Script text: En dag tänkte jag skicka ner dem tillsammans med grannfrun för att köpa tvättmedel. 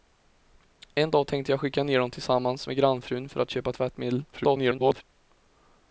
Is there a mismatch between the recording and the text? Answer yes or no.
yes